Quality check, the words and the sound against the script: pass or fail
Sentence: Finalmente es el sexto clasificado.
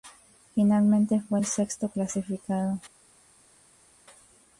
fail